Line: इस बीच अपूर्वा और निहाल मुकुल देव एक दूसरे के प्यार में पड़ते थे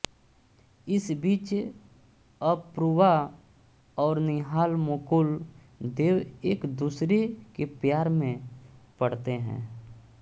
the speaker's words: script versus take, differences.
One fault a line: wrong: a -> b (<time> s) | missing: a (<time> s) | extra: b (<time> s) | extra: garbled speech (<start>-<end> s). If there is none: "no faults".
wrong: थे -> हैं (9.4 s)